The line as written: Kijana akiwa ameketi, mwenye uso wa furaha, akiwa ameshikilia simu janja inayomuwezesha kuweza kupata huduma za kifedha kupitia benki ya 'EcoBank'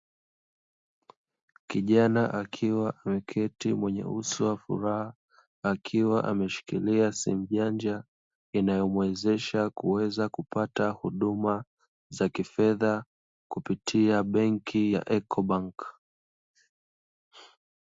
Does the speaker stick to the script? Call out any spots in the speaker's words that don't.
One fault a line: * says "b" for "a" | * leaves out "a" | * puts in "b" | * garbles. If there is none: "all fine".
all fine